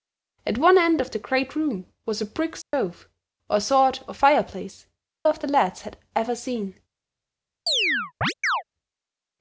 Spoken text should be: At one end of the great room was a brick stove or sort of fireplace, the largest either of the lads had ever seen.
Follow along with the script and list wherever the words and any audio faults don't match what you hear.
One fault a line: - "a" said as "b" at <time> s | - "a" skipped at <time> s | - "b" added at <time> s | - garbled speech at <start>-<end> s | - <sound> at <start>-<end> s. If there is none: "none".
- dropout at 2.6-2.7 s
- "the largest either" skipped at 4.8 s
- chirp at 7.7-8.6 s